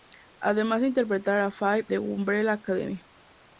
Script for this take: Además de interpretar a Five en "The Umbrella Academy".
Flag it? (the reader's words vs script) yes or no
yes